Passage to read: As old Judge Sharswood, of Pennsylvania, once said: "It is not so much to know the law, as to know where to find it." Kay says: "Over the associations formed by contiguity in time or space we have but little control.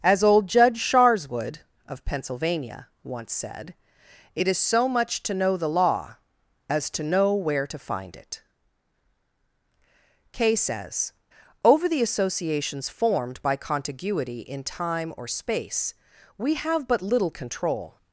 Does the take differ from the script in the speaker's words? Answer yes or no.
yes